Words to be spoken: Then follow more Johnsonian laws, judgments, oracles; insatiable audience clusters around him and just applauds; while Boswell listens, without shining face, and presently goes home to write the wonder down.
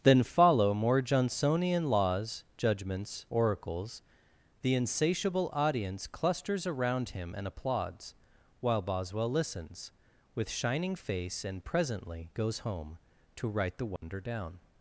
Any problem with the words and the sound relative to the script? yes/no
yes